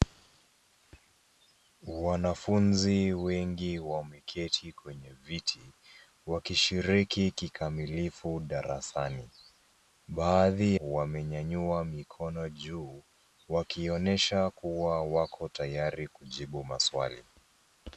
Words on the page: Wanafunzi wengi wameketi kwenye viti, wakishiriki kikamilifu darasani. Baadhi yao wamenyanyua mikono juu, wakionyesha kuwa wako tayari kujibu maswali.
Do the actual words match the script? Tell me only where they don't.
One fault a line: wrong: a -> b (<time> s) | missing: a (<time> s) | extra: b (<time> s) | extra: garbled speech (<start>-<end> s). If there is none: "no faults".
missing: yao (10.8 s)